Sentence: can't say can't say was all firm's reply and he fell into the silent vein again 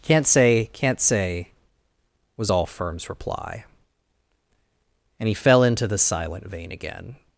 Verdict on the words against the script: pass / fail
pass